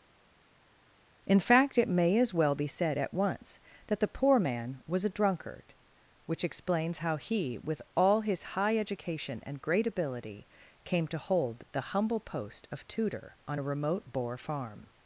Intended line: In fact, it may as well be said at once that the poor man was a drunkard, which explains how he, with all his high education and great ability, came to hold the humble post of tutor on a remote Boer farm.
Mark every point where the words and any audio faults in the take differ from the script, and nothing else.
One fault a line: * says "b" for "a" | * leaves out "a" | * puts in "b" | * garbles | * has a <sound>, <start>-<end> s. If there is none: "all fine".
all fine